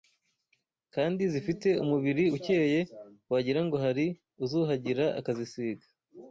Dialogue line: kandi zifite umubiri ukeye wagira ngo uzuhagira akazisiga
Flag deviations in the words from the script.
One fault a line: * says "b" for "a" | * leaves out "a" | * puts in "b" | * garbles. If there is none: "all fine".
* puts in "hari"